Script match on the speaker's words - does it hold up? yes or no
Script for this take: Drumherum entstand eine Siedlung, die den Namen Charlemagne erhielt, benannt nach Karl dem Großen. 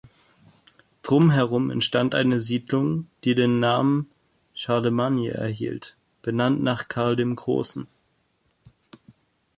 yes